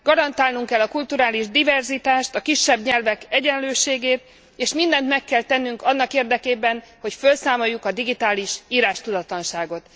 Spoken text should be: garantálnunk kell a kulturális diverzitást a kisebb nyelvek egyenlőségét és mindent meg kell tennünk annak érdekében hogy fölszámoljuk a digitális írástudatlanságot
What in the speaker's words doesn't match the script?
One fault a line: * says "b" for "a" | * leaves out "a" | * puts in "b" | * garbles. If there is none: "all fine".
all fine